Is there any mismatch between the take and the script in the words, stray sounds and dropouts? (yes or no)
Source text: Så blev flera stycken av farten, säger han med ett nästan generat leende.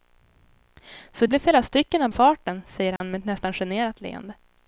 yes